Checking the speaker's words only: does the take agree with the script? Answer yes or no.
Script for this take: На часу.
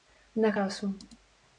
yes